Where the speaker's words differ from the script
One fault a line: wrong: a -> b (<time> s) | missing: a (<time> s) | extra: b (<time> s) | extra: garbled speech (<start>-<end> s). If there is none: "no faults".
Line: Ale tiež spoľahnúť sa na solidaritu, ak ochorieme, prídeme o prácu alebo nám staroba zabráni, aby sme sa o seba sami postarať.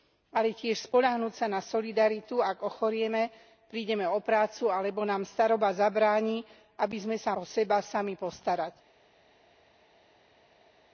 no faults